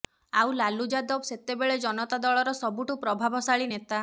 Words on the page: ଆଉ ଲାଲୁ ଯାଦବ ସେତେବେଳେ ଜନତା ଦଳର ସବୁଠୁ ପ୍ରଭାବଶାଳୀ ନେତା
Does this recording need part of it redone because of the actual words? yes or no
no